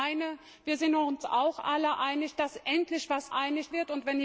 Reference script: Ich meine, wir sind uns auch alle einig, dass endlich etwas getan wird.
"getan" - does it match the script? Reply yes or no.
no